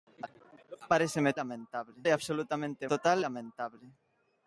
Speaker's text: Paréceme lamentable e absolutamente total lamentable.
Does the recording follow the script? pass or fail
pass